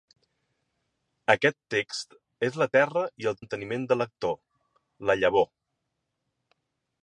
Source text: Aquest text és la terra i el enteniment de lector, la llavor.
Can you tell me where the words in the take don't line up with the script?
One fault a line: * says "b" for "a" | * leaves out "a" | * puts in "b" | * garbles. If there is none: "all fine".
all fine